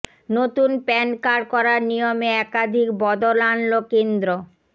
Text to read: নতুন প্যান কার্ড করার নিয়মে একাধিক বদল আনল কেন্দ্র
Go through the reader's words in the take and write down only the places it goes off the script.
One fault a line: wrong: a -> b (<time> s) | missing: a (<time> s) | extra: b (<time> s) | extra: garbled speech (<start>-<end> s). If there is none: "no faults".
no faults